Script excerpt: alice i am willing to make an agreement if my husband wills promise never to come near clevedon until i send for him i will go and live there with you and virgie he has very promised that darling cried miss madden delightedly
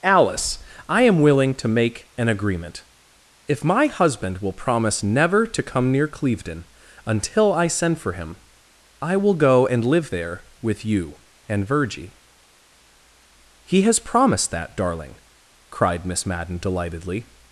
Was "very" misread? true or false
true